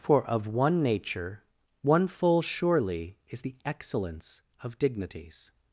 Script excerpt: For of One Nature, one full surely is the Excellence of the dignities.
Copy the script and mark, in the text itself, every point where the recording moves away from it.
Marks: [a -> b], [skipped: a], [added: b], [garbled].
For of One Nature, one full surely is the Excellence of [skipped: the] dignities.